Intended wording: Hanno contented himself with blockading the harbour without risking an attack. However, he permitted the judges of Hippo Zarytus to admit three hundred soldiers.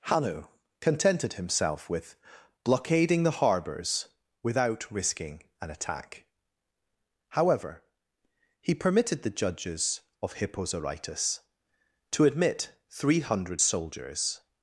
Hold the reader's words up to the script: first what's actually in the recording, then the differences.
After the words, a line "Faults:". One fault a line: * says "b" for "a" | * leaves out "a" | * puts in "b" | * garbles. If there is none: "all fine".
Hanno contented himself with blockading the harbours without risking an attack. However, he permitted the judges of Hippo Zarytus to admit three hundred soldiers.
Faults:
* says "harbours" for "harbour"